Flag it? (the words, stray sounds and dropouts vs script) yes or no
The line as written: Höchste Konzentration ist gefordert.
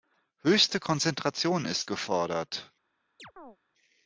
yes